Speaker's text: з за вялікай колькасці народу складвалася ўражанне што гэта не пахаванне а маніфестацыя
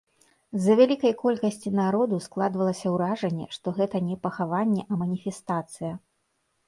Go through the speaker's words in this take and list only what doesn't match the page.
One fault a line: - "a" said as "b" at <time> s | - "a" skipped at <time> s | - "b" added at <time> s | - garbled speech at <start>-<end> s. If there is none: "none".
none